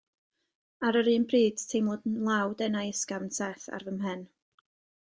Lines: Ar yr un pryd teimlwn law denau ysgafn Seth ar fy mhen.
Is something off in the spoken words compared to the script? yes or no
no